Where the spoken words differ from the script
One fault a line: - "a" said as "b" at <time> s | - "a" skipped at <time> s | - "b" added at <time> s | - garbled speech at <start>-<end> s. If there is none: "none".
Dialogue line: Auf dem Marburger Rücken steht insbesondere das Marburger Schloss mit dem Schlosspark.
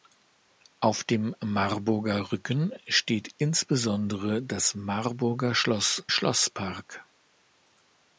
- "mit dem" skipped at 6.1 s